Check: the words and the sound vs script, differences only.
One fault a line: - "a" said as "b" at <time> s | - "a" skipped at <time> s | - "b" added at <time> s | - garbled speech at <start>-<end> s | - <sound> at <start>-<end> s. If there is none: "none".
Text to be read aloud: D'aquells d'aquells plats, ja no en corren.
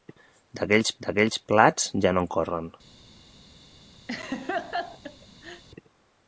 - laugh at 4.1-5.6 s